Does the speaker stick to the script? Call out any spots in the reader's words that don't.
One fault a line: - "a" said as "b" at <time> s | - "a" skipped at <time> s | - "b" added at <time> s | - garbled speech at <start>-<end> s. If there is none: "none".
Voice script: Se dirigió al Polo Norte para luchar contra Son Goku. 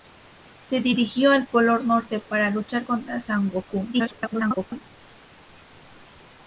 - garbled speech at 3.9-4.8 s